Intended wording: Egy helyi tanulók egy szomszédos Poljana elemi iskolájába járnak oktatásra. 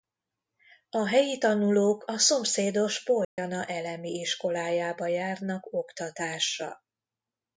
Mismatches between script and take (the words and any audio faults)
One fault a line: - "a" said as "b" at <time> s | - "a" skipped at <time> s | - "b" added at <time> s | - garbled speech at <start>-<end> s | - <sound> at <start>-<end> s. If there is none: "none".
- "Egy" said as "A" at 0.9 s
- "egy" said as "a" at 2.1 s
- dropout at 3.2-3.4 s